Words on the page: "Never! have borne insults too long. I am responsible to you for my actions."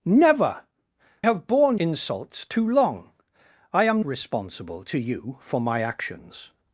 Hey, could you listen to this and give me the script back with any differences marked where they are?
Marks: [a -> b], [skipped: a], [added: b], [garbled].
"Never! have borne insults too long. I am responsible to you for my actions."